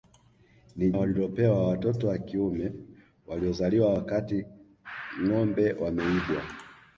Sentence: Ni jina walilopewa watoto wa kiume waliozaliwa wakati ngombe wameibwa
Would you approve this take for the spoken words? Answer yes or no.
no